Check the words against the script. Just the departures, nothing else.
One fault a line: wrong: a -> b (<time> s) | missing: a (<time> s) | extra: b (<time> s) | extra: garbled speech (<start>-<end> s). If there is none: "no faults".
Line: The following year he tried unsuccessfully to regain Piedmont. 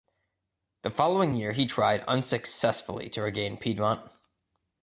no faults